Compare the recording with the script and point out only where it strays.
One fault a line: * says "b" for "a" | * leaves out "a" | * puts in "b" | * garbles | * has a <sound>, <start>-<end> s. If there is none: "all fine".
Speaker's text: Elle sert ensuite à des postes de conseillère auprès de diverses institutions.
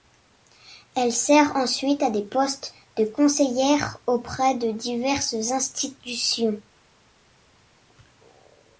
all fine